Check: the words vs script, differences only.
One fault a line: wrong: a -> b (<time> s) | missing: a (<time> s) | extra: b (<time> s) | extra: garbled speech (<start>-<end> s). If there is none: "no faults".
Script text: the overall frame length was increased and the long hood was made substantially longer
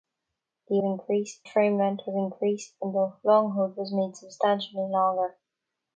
wrong: overall -> increased (0.8 s)